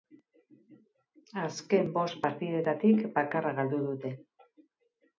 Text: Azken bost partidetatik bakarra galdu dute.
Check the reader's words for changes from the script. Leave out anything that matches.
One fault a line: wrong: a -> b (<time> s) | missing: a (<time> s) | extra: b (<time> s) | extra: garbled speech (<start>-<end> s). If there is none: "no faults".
no faults